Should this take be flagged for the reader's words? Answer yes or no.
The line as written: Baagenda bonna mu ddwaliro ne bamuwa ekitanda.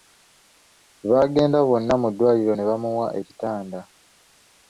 no